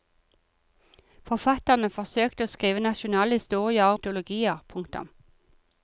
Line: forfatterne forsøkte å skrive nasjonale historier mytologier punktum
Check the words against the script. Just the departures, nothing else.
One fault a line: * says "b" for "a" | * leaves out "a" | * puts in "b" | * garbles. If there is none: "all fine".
all fine